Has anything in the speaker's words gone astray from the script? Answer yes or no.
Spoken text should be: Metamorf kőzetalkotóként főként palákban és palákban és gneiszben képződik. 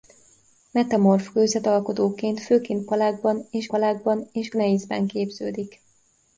no